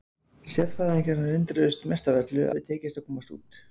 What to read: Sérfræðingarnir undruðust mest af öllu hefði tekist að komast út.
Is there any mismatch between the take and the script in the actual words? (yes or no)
no